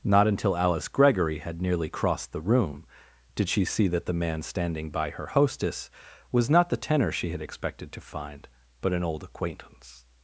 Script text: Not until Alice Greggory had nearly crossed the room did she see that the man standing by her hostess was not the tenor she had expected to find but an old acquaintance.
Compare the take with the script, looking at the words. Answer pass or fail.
pass